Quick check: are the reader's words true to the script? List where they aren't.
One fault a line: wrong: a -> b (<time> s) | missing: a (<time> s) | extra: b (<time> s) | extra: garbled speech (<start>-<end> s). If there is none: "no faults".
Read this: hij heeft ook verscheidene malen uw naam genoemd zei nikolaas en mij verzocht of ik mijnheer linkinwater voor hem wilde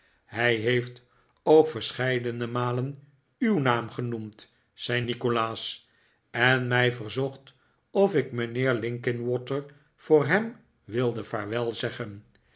no faults